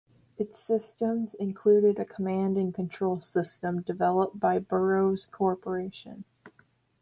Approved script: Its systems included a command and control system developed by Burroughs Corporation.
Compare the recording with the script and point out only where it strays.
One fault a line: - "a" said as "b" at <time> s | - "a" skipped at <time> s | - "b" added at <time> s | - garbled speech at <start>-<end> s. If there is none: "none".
none